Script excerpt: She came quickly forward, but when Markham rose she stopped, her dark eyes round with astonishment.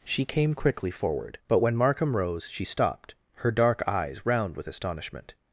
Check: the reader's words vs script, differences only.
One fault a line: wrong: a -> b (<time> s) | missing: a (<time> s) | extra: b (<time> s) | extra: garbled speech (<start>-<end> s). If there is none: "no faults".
no faults